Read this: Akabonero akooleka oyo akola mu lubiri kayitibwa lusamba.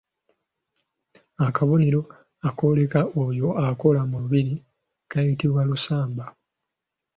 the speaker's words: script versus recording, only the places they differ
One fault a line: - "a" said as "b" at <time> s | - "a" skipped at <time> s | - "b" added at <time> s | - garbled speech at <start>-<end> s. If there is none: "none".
none